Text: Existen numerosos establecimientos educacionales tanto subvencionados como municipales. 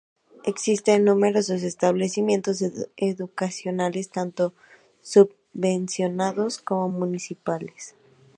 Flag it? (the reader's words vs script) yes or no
no